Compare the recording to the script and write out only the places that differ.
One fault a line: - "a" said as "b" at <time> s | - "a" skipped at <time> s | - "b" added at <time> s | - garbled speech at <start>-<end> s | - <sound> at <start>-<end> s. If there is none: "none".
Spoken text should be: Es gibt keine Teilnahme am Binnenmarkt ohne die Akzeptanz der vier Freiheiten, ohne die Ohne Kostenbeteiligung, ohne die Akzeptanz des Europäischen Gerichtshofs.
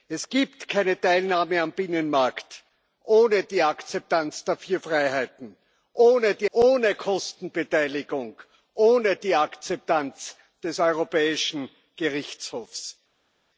none